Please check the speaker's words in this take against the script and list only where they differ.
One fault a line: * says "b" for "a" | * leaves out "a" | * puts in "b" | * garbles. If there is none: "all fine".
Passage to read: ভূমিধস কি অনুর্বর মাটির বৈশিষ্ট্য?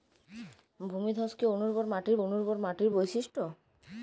* puts in "অনুর্বর মাটির"